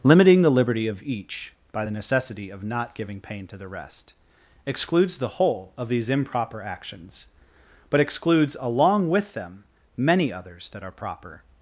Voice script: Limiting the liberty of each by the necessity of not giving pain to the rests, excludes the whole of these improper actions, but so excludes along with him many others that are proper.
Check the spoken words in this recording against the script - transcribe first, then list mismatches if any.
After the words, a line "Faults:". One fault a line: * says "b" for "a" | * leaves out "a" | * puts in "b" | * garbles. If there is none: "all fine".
Limiting the liberty of each by the necessity of not giving pain to the rest, excludes the whole of these improper actions, but excludes along with them many others that are proper.
Faults:
* says "rest" for "rests"
* leaves out "so"
* says "them" for "him"